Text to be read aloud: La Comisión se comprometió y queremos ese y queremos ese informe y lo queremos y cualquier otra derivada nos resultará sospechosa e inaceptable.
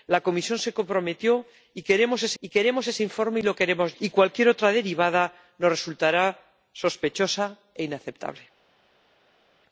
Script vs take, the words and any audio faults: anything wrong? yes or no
no